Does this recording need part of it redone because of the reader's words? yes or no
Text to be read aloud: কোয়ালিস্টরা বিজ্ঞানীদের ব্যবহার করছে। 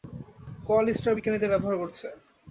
no